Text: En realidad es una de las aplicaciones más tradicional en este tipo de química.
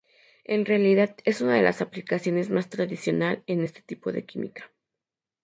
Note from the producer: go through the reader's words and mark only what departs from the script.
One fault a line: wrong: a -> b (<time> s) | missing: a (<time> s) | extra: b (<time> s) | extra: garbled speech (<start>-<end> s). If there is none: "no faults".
no faults